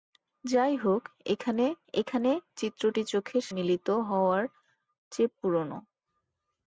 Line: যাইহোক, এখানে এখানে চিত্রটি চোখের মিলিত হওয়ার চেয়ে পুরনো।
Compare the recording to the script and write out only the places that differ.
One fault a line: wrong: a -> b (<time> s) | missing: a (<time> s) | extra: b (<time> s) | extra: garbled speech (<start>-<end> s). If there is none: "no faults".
no faults